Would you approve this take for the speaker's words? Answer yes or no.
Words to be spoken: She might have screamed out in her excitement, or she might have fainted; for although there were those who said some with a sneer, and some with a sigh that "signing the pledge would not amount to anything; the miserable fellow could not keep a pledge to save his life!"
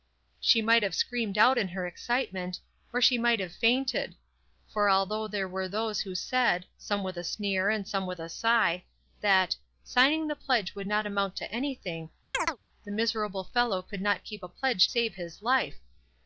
no